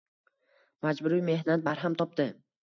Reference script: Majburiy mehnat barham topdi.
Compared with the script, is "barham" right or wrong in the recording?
right